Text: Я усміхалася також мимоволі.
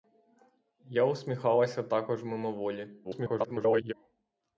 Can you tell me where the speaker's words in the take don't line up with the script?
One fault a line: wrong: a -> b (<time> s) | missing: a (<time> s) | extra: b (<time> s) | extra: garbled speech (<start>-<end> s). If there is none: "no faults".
extra: garbled speech (3.0-3.9 s)